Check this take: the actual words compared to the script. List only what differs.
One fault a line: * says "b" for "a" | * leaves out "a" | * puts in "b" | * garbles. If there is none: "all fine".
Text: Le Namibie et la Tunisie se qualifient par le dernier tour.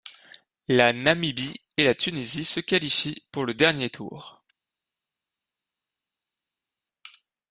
* says "La" for "Le"
* says "pour" for "par"